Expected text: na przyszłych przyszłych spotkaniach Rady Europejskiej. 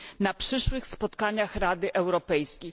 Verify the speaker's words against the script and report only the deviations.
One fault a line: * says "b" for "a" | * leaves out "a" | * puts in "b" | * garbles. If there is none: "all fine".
* leaves out "przyszłych"